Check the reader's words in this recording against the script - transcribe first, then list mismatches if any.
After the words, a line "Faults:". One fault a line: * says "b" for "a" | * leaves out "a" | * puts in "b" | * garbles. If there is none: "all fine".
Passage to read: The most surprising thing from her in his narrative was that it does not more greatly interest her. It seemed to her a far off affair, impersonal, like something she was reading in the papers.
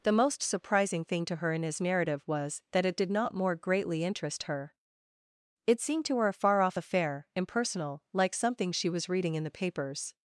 The most surprising thing to her in his narrative was that it did not more greatly interest her. It seemed to her a far off affair, impersonal, like something she was reading in the papers.
Faults:
* says "to" for "from"
* says "did" for "does"